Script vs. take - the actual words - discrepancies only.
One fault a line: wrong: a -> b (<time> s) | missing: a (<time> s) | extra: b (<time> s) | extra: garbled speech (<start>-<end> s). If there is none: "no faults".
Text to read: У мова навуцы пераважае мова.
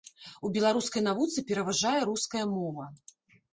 wrong: мова -> беларускай (0.6 s)
extra: руская (2.1 s)